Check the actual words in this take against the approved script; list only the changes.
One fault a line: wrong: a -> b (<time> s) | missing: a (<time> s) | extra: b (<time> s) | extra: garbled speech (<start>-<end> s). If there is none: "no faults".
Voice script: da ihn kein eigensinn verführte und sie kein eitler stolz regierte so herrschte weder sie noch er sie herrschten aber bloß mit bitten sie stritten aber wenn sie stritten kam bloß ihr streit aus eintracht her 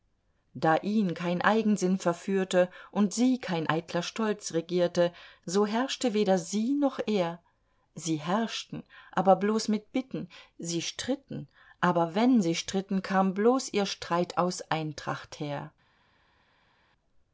no faults